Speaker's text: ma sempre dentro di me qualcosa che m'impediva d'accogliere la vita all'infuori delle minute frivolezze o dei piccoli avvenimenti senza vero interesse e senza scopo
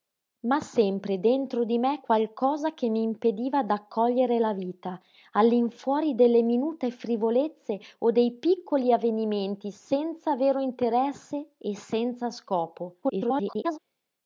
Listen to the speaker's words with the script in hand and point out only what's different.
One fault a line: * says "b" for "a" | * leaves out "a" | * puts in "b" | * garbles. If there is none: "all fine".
* garbles